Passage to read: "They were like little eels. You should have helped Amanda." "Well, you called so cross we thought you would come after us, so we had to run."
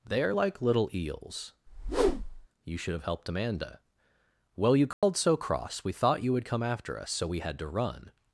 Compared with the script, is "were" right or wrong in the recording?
wrong